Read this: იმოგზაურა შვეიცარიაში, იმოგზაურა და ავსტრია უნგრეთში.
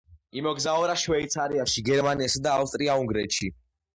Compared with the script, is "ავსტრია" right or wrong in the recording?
right